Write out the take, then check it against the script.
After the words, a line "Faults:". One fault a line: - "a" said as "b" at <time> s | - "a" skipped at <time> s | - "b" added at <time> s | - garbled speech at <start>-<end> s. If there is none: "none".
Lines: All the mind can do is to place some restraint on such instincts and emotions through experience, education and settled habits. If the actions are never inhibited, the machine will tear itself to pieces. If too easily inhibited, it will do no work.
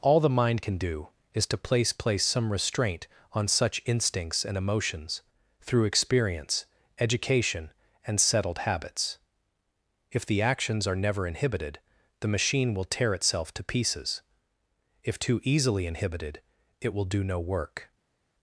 All the mind can do is to place place some restraint on such instincts and emotions through experience, education and settled habits. If the actions are never inhibited, the machine will tear itself to pieces. If too easily inhibited, it will do no work.
Faults:
- "place" added at 1.9 s